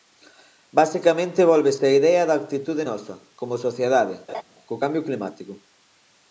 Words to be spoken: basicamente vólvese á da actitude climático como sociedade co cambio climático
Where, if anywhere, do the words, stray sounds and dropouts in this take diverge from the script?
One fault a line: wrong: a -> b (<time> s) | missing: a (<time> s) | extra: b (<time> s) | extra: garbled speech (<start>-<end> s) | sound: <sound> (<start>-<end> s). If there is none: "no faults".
extra: idea (2.0 s)
wrong: climático -> nosa (2.9 s)
sound: laugh (4.3-4.4 s)